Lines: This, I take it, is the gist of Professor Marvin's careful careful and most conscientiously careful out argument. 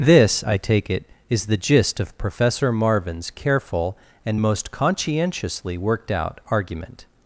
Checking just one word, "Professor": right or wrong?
right